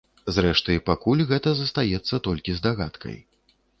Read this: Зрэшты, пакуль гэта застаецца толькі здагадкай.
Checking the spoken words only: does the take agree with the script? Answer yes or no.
yes